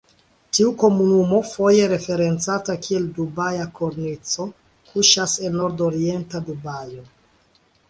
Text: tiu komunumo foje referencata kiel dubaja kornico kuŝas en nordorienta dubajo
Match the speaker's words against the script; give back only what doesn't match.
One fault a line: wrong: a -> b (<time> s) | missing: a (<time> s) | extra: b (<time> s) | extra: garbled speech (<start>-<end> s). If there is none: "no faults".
no faults